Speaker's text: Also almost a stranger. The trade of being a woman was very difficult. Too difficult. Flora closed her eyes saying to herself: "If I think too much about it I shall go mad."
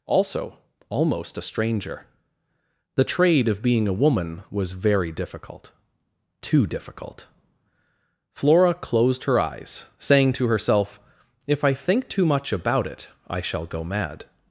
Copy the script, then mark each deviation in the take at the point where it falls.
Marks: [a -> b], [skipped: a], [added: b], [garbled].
Also almost a stranger. The trade of being a woman was very difficult. Too difficult. Flora closed her eyes saying to herself: "If I think too much about it I shall go mad."